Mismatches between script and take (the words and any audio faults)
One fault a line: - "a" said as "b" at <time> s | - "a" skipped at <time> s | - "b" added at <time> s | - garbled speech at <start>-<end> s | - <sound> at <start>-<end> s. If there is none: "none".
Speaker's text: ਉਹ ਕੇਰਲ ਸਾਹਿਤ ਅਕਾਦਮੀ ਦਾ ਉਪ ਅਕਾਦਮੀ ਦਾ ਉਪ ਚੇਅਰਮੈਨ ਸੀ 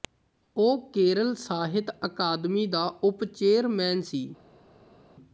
- "ਅਕਾਦਮੀ ਦਾ ਉਪ" skipped at 3.2 s